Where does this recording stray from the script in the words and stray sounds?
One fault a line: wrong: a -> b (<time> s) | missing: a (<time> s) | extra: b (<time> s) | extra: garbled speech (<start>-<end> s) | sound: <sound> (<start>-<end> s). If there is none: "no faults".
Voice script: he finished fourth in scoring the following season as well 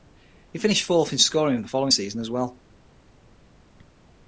no faults